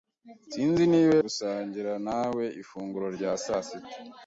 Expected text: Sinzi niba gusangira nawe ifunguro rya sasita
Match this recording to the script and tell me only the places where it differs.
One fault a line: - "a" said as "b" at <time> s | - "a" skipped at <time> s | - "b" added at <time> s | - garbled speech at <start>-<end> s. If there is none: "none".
none